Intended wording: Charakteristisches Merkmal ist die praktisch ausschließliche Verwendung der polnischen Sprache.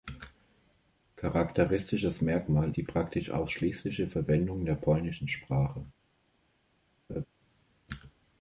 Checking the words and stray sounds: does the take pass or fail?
fail